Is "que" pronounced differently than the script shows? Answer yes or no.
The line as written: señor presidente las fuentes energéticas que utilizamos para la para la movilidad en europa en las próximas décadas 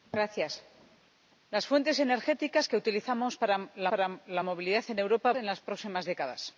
no